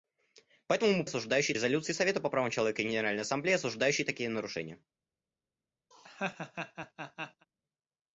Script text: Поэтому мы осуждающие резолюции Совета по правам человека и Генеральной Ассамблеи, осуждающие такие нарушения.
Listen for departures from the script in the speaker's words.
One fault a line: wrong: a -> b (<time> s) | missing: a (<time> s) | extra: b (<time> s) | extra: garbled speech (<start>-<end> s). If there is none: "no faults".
no faults